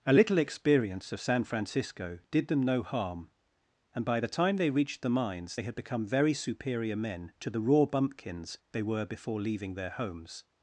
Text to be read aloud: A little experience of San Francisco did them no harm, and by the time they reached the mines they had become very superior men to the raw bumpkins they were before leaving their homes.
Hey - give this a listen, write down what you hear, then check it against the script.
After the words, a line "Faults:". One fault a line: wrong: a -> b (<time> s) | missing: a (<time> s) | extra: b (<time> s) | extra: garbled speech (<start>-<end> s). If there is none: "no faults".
A little experience of San Francisco did them no harm, and by the time they reached the mines they had become very superior men to the raw bumpkins they were before leaving their homes.
Faults:
no faults